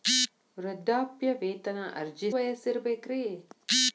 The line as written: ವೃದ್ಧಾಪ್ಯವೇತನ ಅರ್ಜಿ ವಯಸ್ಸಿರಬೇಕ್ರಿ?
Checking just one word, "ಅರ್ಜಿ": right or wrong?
right